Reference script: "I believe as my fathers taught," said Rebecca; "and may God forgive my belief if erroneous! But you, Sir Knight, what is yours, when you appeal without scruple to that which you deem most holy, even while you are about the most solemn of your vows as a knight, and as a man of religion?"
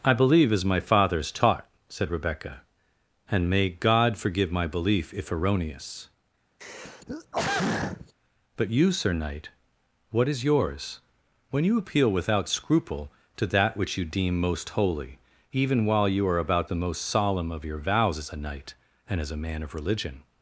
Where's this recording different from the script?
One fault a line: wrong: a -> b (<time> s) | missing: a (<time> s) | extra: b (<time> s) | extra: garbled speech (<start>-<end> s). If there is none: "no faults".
no faults